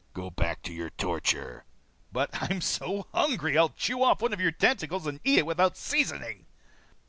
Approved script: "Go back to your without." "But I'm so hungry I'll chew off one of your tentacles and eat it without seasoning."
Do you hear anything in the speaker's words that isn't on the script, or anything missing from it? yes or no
yes